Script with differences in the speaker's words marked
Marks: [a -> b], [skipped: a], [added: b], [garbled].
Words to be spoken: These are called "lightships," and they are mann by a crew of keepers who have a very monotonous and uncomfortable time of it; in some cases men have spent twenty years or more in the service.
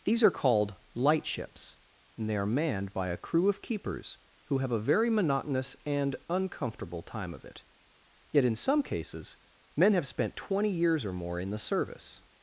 These are called "lightships," and they are [mann -> manned] by a crew of keepers who have a very monotonous and uncomfortable time of it; [added: yet] in some cases men have spent twenty years or more in the service.